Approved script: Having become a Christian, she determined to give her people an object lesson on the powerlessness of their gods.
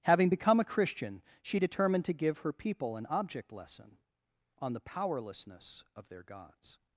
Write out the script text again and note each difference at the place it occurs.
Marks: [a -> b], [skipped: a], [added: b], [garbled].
Having become a Christian, she determined to give her people an object lesson on the powerlessness of their gods.